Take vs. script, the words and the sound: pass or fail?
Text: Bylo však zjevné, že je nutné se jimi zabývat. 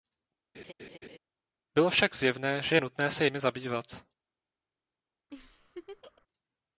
fail